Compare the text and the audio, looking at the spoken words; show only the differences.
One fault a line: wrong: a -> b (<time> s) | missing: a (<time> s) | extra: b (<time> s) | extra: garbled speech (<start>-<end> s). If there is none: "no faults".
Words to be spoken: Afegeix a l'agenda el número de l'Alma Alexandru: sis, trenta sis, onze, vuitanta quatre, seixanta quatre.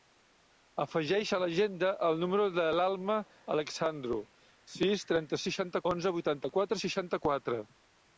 wrong: sis -> seixanta (5.5 s)